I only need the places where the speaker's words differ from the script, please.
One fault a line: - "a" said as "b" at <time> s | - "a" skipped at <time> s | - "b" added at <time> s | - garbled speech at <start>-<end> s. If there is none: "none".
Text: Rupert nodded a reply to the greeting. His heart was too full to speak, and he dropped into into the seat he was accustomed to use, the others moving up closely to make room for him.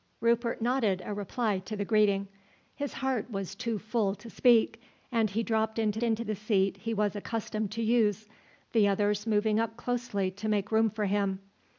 none